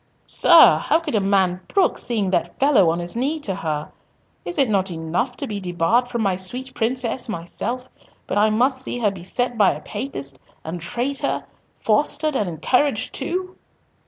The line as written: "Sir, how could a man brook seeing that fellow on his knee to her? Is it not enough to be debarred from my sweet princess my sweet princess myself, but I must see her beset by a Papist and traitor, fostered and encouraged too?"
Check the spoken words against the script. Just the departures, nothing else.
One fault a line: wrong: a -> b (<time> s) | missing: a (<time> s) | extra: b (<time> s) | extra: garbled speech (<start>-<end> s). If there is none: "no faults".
missing: my sweet princess (7.3 s)